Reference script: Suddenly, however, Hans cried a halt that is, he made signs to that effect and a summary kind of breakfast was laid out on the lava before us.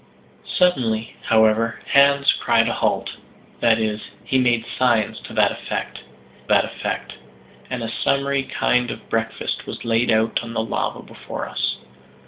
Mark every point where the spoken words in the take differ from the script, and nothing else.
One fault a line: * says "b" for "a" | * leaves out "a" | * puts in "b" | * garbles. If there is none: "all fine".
* puts in "that effect"